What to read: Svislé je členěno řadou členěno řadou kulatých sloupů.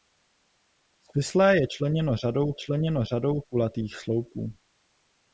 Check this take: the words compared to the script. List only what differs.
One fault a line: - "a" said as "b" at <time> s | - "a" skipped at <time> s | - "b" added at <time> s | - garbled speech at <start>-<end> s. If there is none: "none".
none